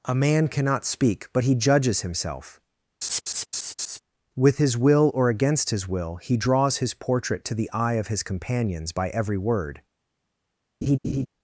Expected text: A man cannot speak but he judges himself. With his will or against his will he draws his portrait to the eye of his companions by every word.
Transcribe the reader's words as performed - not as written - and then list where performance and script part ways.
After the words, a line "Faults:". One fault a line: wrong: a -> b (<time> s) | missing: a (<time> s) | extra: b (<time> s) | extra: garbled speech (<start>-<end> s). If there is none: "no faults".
A man cannot speak but he judges himself. With his will or against his will he draws his portrait to the eye of his companions by every word.
Faults:
no faults